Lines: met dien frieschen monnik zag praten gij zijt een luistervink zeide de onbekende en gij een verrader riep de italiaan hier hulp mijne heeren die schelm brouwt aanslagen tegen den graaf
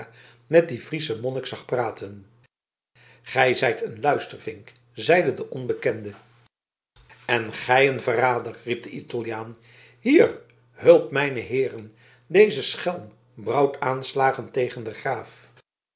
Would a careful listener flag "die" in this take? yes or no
yes